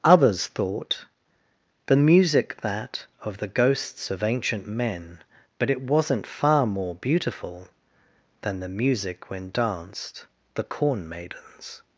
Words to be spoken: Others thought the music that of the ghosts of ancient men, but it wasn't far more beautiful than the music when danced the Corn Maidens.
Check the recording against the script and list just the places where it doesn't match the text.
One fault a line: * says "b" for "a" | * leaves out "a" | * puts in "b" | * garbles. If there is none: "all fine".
all fine